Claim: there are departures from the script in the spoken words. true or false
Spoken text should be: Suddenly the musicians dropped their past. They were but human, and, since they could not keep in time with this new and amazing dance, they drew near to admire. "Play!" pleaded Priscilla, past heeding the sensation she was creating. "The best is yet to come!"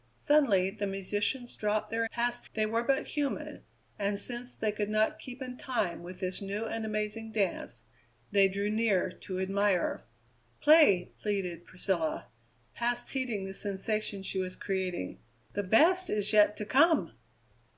false